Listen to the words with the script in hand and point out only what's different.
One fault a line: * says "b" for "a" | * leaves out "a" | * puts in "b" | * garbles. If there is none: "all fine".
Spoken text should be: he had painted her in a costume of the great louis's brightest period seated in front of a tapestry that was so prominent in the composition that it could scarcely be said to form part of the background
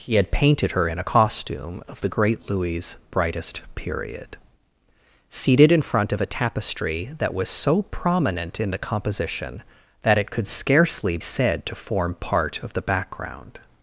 * leaves out "be"